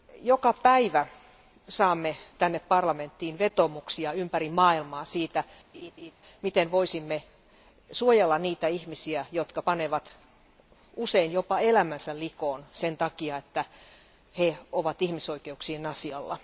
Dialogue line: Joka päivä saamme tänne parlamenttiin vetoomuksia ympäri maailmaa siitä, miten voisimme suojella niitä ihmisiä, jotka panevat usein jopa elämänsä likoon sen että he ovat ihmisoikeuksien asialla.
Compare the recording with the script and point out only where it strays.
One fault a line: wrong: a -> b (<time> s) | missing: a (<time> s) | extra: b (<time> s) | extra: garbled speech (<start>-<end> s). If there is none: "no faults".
extra: takia (13.0 s)